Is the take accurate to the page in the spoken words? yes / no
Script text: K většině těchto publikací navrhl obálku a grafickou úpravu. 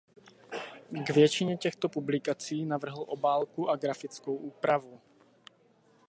yes